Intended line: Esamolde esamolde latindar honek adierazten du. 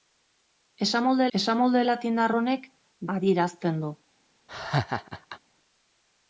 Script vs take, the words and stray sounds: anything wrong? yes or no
yes